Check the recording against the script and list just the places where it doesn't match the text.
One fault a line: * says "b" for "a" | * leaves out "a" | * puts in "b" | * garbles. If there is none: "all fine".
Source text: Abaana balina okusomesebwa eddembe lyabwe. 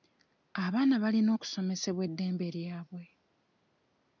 all fine